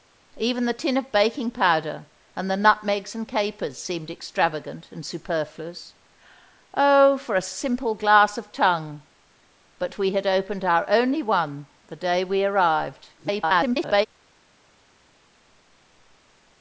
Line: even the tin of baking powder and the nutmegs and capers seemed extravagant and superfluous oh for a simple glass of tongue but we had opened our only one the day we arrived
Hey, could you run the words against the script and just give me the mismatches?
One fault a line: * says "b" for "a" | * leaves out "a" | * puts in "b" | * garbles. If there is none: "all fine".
* garbles